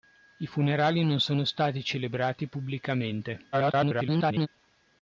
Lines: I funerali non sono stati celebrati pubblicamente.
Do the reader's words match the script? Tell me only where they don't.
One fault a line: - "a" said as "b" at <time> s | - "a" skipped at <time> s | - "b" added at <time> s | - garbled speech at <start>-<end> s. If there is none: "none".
- garbled speech at 3.5-4.5 s